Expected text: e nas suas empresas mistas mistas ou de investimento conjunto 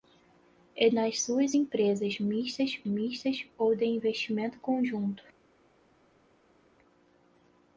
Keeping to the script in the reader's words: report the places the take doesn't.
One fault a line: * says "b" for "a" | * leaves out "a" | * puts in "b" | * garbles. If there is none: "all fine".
all fine